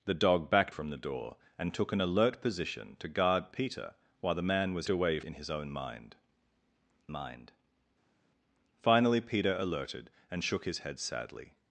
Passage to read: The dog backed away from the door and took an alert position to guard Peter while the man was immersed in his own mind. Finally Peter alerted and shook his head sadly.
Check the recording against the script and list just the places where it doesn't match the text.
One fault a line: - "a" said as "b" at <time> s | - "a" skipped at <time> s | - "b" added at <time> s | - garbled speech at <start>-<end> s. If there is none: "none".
- "away" skipped at 0.8 s
- "immersed" said as "away" at 4.9 s
- "mind" added at 7.1 s